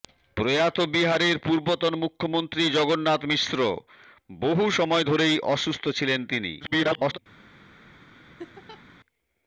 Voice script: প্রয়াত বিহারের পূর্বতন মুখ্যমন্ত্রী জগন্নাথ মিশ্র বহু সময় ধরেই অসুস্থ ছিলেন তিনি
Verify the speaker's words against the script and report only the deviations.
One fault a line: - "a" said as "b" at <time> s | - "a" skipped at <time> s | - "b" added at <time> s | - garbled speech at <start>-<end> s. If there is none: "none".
- garbled speech at 6.6-7.2 s